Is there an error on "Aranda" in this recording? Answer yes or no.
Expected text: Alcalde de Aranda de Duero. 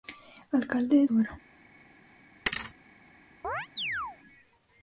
yes